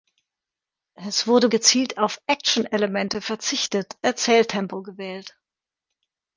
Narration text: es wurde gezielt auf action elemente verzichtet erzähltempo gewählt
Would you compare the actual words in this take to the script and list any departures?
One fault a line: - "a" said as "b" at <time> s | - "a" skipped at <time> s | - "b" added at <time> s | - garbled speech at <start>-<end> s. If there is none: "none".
none